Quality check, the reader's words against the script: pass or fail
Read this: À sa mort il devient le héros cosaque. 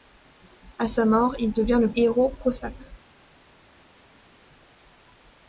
pass